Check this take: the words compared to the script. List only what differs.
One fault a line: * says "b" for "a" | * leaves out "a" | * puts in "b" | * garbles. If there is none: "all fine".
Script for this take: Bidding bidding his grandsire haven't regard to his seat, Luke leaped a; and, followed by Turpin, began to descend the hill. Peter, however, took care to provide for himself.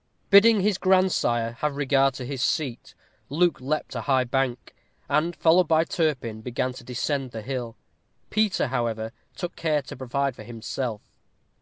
* leaves out "bidding"
* says "have" for "haven't"
* puts in "high bank"